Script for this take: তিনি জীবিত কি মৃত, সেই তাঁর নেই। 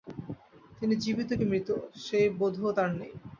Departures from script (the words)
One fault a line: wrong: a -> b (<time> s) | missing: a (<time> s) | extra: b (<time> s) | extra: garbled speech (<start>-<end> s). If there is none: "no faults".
extra: বোধও (2.4 s)